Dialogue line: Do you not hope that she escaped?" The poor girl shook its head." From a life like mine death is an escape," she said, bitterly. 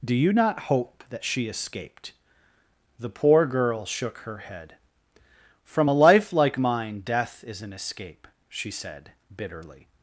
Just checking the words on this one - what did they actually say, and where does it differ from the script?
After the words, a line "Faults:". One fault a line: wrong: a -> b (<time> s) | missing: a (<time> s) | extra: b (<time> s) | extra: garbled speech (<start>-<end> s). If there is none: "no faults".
Do you not hope that she escaped?" The poor girl shook her head." From a life like mine death is an escape," she said, bitterly.
Faults:
wrong: its -> her (4.2 s)